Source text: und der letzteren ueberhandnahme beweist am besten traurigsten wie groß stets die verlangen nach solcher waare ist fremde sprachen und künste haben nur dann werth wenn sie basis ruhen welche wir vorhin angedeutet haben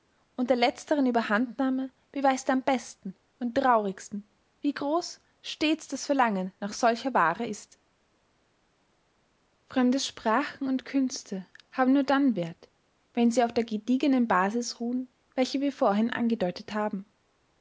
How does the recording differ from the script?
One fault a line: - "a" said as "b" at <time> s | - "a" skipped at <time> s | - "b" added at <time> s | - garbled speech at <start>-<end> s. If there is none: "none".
- "und" added at 3.4 s
- "die" said as "das" at 5.9 s
- "auf der gediegenen" added at 13.4 s